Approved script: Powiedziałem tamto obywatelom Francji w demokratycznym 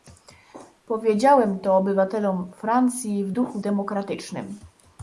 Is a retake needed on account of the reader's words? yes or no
yes